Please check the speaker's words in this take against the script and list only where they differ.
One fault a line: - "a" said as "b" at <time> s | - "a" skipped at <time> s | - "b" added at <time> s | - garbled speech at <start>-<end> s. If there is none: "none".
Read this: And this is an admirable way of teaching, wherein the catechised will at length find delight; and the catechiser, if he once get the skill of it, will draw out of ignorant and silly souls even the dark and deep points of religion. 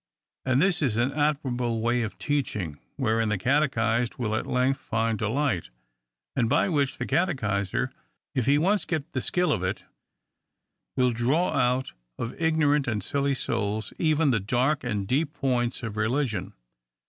- "by which" added at 6.5 s